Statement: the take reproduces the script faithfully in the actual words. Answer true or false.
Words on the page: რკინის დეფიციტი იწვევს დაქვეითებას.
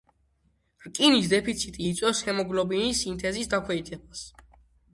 false